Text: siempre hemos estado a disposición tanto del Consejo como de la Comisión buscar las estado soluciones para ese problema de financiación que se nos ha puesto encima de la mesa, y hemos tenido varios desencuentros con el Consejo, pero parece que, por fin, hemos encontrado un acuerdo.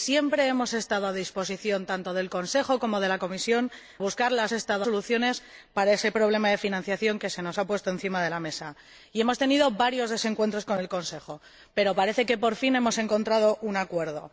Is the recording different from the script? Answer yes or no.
no